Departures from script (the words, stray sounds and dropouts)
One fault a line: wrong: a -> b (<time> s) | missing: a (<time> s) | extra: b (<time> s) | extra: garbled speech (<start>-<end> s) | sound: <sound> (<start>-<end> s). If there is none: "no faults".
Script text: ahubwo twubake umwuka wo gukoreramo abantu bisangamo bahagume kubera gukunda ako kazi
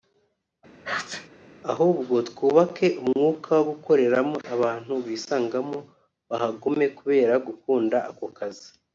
sound: sneeze (0.8-1.3 s)